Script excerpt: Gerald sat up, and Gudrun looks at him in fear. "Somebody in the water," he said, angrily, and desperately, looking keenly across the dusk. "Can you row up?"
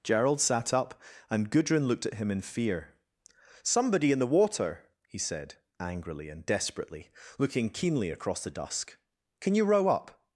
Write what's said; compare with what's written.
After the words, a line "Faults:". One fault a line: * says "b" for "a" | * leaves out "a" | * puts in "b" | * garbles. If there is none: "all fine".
Gerald sat up, and Gudrun looked at him in fear. "Somebody in the water," he said, angrily, and desperately, looking keenly across the dusk. "Can you row up?"
Faults:
* says "looked" for "looks"